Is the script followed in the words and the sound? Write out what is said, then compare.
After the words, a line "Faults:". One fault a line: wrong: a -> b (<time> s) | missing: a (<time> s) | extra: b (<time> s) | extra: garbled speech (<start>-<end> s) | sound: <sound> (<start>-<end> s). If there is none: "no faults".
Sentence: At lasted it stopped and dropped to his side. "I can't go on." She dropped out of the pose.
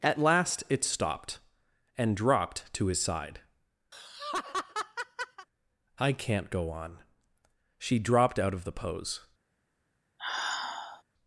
At last it stopped and dropped to his side. "I can't go on." She dropped out of the pose.
Faults:
wrong: lasted -> last (0.2 s)
sound: laugh (3.9-5.5 s)
sound: sigh (10.2-11.0 s)